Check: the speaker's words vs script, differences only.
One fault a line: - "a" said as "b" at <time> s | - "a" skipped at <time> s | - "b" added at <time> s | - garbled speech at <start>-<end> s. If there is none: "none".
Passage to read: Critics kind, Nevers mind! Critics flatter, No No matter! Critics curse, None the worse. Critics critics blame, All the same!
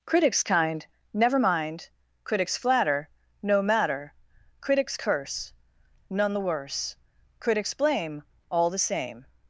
- "Nevers" said as "Never" at 1.1 s
- "No" skipped at 3.6 s
- "critics" skipped at 7.7 s